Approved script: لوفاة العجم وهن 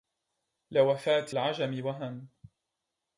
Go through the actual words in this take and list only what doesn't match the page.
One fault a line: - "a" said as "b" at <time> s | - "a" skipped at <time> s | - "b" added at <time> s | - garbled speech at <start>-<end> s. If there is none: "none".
none